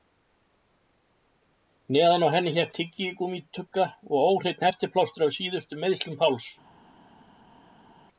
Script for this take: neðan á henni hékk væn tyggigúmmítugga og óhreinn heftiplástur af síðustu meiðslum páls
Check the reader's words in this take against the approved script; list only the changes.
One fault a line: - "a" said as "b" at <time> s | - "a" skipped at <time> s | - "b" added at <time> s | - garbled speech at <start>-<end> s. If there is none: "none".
- "væn" skipped at 2.7 s